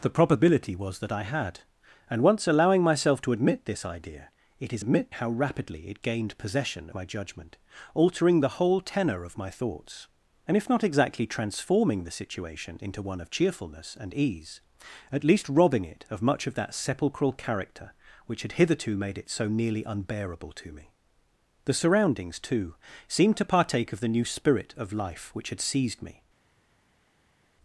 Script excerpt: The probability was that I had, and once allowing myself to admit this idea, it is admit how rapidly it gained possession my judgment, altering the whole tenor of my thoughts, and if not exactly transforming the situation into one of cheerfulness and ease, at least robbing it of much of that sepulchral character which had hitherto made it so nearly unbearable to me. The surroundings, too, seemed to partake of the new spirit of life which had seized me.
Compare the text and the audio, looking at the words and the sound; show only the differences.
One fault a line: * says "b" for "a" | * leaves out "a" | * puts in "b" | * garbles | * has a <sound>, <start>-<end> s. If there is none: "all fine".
all fine